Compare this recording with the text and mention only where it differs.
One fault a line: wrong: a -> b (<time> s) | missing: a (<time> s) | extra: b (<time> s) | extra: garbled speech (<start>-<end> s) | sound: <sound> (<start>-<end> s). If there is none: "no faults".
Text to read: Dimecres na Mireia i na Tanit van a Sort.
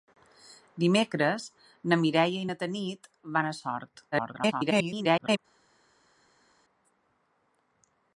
extra: garbled speech (4.1-5.4 s)